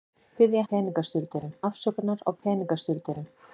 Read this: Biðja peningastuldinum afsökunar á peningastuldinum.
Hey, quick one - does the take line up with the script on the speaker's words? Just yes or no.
yes